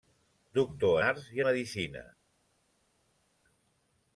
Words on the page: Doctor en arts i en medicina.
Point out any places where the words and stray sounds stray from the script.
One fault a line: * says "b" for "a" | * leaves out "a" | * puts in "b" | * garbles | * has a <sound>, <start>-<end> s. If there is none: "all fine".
* leaves out "en"
* leaves out "en"